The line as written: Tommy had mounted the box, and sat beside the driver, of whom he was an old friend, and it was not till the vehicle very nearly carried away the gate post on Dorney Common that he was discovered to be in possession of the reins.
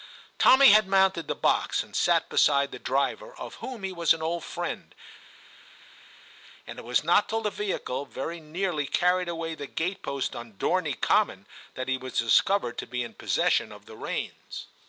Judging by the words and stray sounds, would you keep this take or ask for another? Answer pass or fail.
pass